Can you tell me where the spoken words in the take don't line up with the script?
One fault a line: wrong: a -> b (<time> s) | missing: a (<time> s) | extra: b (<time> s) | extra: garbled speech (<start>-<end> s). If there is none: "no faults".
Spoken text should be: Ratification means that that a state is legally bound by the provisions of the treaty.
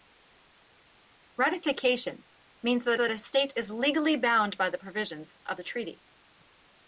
no faults